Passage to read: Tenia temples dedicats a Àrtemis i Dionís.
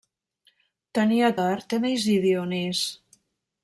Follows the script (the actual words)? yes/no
no